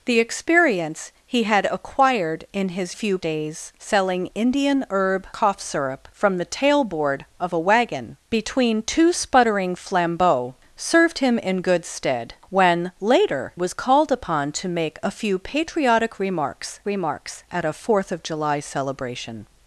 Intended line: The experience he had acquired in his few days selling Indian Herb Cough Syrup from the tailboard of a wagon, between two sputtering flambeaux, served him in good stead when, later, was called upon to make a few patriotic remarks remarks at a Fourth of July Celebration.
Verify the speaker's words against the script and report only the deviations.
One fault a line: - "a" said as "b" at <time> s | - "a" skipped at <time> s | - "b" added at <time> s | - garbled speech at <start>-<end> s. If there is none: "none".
none